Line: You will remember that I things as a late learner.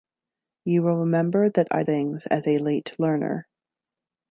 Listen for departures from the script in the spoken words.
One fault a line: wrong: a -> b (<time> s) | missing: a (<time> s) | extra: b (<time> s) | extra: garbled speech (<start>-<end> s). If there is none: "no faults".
no faults